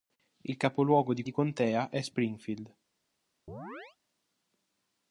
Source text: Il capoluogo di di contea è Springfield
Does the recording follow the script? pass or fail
pass